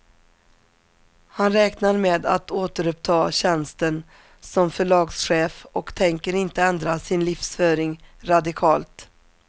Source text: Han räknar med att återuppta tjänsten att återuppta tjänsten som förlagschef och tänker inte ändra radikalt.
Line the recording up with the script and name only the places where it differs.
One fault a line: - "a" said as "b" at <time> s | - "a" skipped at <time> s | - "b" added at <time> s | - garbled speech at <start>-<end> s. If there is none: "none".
- "att återuppta tjänsten" skipped at 4.0 s
- "sin livsföring" added at 7.0 s